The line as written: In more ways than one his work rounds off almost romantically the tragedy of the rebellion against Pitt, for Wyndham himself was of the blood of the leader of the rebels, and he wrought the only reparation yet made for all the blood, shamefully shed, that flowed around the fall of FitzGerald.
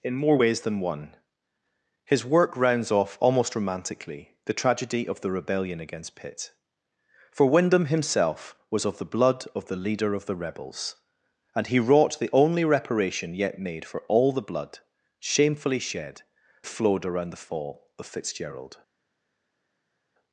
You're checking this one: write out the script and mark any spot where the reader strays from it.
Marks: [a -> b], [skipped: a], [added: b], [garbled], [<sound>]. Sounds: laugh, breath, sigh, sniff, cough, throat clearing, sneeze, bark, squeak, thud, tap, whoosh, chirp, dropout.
In more ways than one his work rounds off almost romantically the tragedy of the rebellion against Pitt, for Wyndham himself was of the blood of the leader of the rebels, and he wrought the only reparation yet made for all the blood, shamefully shed, [skipped: that] flowed around the fall of FitzGerald.